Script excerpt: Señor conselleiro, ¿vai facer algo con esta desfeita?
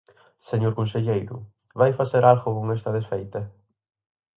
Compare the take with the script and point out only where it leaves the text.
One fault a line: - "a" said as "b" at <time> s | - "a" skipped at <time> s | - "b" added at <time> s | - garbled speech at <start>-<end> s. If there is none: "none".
none